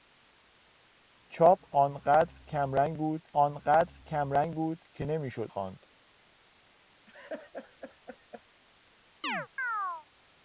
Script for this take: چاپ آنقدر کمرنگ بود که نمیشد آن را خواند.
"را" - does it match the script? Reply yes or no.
no